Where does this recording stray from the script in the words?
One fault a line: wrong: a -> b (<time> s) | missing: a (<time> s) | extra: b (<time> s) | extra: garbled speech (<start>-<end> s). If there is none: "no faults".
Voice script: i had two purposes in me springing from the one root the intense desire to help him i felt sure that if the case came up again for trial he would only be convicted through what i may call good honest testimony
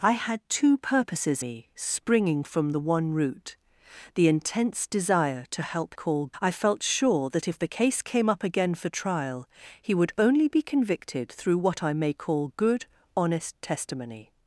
missing: in (1.4 s)
wrong: him -> call (5.9 s)